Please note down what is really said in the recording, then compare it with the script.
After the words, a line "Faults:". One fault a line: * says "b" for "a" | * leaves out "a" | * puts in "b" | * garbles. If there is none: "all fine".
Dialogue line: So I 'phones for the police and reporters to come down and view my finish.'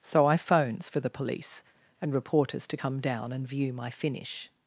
So I 'phones for the police and reporters to come down and view my finish.'
Faults:
all fine